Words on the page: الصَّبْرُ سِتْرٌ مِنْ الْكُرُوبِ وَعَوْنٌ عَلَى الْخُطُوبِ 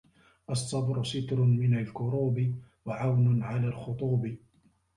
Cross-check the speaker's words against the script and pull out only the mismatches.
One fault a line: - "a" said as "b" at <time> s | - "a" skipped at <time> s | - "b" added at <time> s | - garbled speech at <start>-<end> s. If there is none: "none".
none